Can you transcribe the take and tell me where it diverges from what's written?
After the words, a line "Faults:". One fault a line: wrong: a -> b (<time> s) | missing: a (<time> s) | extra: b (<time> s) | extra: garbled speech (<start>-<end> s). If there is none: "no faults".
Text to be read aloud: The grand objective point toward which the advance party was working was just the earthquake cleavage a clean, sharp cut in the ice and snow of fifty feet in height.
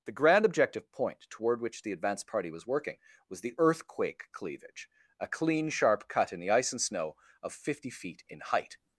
The grand objective point toward which the advance party was working was the earthquake cleavage a clean, sharp cut in the ice and snow of fifty feet in height.
Faults:
missing: just (3.4 s)